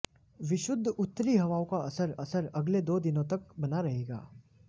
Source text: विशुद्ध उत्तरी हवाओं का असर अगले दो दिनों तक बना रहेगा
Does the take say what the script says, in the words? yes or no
no